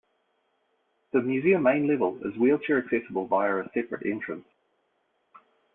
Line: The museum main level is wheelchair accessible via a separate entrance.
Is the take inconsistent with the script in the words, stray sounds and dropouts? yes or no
no